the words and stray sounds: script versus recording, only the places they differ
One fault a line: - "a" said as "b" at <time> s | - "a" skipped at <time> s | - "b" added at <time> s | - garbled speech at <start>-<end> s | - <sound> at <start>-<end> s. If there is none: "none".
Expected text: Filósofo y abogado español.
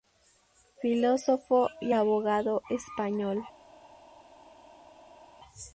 none